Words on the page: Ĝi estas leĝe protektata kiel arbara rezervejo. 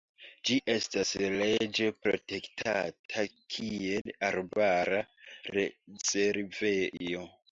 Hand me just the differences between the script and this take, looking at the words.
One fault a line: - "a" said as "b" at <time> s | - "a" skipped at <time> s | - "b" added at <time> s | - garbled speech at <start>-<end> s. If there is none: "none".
none